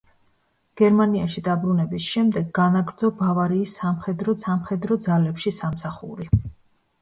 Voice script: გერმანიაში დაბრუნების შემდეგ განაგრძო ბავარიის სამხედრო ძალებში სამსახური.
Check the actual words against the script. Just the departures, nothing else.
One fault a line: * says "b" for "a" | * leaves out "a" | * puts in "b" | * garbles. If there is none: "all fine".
* puts in "სამხედრო"